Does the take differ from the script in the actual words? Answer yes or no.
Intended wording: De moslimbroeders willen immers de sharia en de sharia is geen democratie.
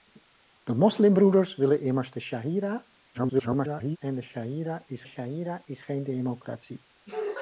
yes